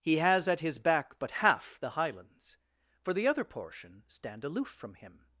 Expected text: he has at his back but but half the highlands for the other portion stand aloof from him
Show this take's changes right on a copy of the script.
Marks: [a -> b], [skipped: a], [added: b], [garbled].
he has at his back but [skipped: but] half the highlands for the other portion stand aloof from him